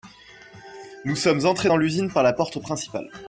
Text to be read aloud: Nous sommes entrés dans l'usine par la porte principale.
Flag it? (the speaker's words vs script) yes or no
no